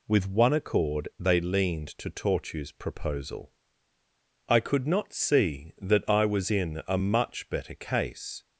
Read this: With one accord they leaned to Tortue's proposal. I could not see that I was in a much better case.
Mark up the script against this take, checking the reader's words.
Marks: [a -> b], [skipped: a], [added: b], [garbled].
With one accord they leaned to Tortue's proposal. I could not see that I was in a much better case.